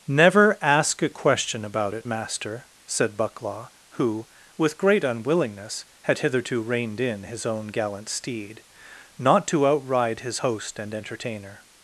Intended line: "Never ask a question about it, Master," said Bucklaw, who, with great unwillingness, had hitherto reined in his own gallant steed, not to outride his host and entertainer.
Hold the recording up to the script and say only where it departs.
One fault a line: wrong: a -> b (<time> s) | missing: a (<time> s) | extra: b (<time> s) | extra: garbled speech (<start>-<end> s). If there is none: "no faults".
no faults